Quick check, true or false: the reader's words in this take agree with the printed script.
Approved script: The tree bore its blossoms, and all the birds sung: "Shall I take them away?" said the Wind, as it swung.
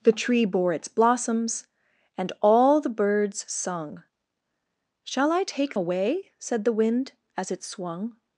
false